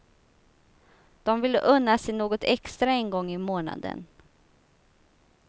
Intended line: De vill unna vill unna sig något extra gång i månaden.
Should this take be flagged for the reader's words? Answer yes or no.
yes